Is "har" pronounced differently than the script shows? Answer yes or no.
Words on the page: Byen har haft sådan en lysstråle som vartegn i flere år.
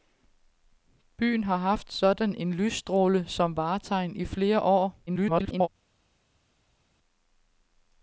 no